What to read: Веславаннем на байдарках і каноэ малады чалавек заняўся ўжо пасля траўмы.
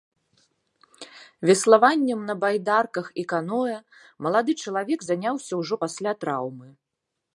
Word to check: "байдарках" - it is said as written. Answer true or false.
true